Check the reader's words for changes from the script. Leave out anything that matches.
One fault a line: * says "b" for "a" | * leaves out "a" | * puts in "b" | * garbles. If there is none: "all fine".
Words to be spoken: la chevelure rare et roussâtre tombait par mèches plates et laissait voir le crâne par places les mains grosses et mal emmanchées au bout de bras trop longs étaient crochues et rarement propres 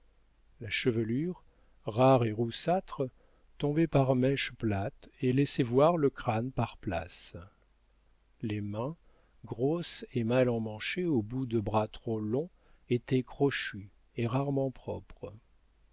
all fine